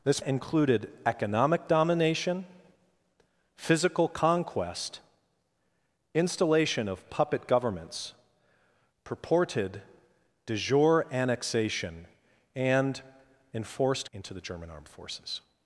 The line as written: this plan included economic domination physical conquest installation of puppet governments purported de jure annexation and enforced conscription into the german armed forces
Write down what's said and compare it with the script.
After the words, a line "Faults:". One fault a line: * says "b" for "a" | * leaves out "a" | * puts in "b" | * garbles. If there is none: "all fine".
this included economic domination physical conquest installation of puppet governments purported de jure annexation and enforced into the german armed forces
Faults:
* leaves out "plan"
* leaves out "conscription"